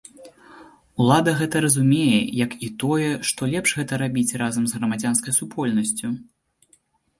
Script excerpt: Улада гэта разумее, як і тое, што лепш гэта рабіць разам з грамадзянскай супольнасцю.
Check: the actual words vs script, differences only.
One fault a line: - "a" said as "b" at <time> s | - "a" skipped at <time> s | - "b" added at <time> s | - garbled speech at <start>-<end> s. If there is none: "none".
none